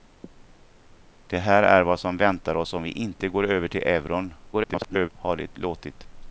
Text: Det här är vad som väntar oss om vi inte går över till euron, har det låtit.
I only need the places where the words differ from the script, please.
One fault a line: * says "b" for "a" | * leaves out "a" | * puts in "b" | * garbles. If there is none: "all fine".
* garbles